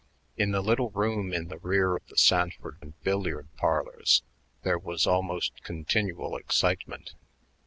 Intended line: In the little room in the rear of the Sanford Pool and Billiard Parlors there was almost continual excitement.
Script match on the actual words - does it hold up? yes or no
no